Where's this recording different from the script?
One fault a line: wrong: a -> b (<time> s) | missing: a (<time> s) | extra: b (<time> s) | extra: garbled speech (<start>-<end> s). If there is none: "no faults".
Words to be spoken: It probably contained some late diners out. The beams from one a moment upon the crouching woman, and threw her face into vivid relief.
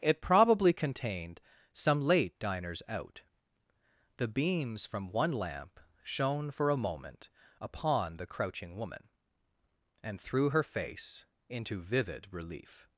extra: lamp shone for (5.3 s)